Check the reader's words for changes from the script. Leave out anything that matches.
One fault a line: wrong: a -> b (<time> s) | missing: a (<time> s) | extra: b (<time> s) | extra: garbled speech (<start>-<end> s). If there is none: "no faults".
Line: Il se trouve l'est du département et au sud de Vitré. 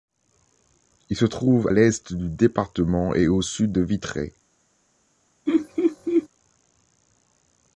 no faults